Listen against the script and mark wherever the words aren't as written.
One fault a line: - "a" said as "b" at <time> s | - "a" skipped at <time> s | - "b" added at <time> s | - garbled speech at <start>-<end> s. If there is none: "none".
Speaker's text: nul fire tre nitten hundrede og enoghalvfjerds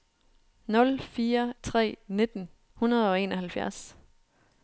none